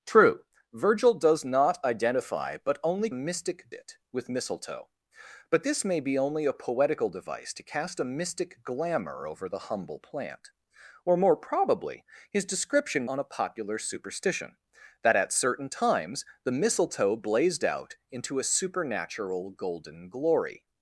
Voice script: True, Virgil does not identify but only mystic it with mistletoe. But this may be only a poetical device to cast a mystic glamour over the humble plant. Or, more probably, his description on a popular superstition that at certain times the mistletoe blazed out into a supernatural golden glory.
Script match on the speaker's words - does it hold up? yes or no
yes